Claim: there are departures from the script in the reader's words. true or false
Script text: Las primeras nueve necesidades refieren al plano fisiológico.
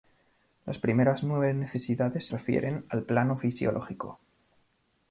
false